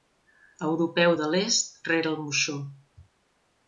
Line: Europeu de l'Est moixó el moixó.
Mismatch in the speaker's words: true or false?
true